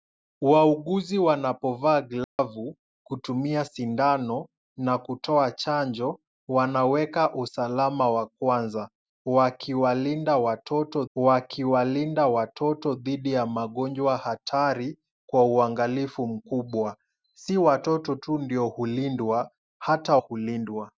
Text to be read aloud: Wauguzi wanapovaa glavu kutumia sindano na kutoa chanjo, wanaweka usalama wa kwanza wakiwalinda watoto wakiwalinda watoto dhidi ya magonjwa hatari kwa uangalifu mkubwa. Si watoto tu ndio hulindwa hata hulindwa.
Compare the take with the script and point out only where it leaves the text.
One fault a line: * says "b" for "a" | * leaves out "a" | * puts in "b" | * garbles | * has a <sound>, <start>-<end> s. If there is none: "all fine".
* has a dropout, 2.2-2.4 s